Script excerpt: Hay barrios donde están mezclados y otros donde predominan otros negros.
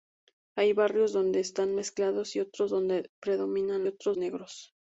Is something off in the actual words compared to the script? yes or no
no